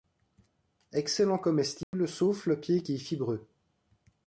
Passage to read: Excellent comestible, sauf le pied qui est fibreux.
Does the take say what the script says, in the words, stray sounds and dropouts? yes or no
no